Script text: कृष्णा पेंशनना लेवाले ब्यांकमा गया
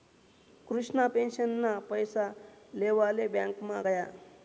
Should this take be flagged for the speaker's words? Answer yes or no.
yes